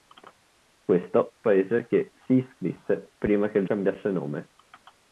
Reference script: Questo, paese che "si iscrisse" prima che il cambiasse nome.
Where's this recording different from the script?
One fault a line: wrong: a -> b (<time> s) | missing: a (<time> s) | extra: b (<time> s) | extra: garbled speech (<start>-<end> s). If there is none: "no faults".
no faults